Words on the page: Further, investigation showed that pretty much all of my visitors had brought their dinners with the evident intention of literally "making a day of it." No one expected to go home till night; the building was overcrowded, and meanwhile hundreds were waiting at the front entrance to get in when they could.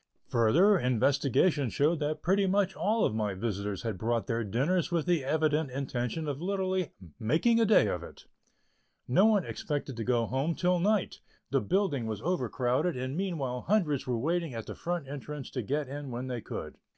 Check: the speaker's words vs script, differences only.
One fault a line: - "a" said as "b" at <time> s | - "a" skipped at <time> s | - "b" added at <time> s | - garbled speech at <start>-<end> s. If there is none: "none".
none